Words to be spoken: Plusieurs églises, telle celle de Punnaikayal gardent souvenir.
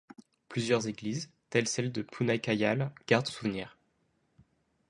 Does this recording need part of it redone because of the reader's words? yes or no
no